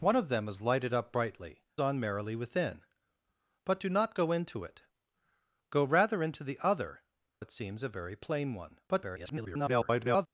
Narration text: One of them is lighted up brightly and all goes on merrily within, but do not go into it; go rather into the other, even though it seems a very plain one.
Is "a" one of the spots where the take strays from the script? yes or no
no